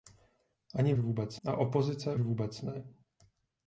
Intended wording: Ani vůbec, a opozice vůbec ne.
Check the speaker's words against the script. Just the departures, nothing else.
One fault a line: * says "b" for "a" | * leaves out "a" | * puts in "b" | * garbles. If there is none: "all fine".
all fine